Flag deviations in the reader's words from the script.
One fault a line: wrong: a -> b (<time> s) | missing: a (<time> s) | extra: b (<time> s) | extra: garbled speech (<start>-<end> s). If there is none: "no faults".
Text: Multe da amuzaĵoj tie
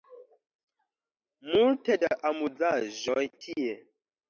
no faults